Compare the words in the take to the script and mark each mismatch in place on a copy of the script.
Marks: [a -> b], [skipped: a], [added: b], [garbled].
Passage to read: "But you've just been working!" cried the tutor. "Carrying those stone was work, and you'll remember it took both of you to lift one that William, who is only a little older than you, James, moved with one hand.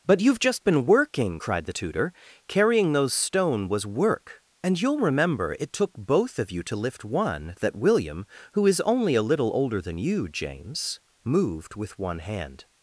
"But you've just been working!" cried the tutor. "Carrying those stone was work, and you'll remember it took both of you to lift one that William, who is only a little older than you, James, moved with one hand.